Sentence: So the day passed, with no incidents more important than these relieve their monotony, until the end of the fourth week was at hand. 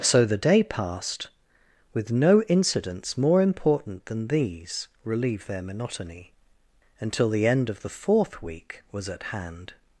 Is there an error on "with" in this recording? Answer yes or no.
no